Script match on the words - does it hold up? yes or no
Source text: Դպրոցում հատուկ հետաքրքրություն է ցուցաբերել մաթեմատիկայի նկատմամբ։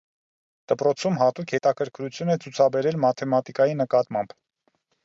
yes